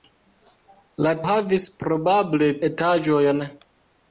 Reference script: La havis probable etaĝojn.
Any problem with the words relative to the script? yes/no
no